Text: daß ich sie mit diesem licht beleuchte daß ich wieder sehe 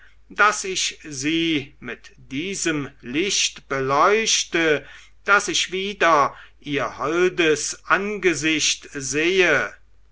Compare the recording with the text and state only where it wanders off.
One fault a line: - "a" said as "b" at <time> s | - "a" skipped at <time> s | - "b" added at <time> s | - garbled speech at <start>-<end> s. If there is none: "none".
- "ihr holdes angesicht" added at 6.6 s